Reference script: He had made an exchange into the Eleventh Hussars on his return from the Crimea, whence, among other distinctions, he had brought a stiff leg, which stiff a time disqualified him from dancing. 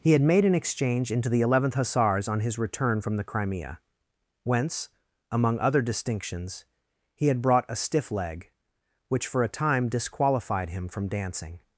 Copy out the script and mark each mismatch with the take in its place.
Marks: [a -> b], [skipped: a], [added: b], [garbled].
He had made an exchange into the Eleventh Hussars on his return from the Crimea, whence, among other distinctions, he had brought a stiff leg, which [stiff -> for] a time disqualified him from dancing.